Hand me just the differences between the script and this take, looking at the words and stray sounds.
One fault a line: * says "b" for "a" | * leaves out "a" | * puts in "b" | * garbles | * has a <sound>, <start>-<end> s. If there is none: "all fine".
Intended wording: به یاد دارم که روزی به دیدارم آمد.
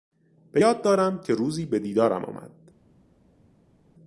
all fine